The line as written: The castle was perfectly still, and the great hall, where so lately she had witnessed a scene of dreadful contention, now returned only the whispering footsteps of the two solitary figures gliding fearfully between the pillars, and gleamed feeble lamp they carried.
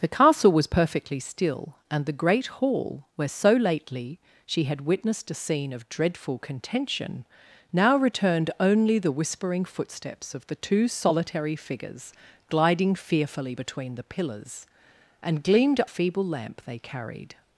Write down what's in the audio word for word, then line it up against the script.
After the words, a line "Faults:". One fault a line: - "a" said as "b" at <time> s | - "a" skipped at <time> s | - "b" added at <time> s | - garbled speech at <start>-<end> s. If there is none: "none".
The castle was perfectly still, and the great hall, where so lately she had witnessed a scene of dreadful contention, now returned only the whispering footsteps of the two solitary figures gliding fearfully between the pillars, and gleamed feeble lamp they carried.
Faults:
none